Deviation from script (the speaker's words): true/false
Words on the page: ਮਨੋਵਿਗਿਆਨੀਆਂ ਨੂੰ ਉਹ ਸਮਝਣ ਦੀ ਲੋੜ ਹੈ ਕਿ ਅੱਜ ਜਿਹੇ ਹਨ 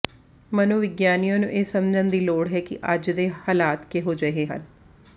true